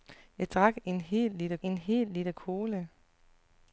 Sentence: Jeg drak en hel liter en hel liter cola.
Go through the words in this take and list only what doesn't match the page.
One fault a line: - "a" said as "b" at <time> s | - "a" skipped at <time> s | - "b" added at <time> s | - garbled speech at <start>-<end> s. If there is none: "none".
none